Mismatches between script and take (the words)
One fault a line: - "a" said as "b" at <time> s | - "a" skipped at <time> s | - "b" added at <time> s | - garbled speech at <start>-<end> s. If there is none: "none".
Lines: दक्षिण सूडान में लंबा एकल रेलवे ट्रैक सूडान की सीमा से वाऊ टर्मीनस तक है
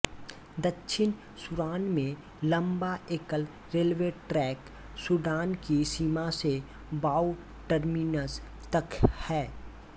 none